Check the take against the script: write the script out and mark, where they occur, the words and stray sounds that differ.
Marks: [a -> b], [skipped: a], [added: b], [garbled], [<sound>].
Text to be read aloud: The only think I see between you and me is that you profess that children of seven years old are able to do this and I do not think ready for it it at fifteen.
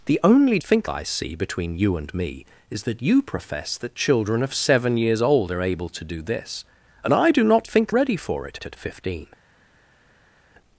The only think I see between you and me is that you profess that children of seven years old are able to do this and I do not think ready for it it at fifteen.